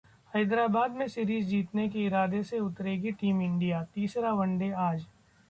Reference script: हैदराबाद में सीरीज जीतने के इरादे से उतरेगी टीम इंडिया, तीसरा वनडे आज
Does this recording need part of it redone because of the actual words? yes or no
no